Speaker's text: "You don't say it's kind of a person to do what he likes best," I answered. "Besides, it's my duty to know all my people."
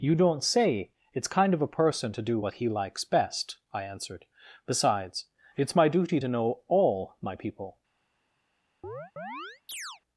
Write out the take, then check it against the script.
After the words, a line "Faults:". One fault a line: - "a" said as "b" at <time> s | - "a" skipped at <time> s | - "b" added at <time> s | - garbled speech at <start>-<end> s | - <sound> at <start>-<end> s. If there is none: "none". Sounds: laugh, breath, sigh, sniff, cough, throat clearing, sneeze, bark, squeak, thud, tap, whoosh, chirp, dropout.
"You don't say it's kind of a person to do what he likes best," I answered. "Besides, it's my duty to know all my people."
Faults:
- chirp at 8.8-10.0 s